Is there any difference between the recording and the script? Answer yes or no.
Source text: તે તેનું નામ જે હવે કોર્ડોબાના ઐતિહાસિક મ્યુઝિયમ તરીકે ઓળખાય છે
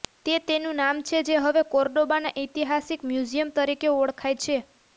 yes